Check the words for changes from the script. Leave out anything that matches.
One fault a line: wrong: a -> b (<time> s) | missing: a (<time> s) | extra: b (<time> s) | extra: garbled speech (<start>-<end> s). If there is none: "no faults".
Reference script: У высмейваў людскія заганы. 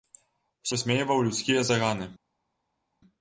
no faults